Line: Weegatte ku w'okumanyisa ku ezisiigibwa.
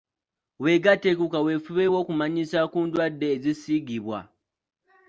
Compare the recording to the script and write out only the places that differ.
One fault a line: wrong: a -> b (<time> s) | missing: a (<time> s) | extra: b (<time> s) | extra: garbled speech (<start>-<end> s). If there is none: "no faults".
extra: kaweefube (1.3 s)
extra: ndwadde (2.9 s)